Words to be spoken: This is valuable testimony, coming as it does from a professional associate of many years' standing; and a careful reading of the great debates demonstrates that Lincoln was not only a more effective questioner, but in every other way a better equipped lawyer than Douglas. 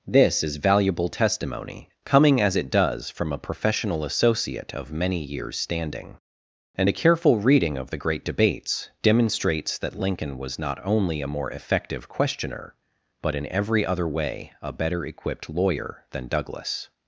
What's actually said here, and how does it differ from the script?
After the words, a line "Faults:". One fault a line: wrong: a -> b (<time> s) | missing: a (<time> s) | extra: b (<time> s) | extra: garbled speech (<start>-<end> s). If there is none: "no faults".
This is valuable testimony, coming as it does from a professional associate of many years' standing; and a careful reading of the great debates demonstrates that Lincoln was not only a more effective questioner, but in every other way a better equipped lawyer than Douglas.
Faults:
no faults